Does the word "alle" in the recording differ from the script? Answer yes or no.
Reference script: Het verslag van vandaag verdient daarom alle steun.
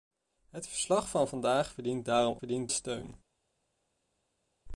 yes